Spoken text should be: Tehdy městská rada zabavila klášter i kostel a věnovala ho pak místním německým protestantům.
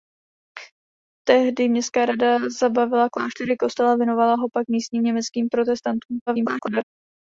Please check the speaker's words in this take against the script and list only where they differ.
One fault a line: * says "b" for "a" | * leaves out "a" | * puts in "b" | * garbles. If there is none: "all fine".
* garbles